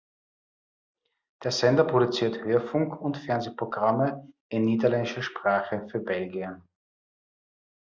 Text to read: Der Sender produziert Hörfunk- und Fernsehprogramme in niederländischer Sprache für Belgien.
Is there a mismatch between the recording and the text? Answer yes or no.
no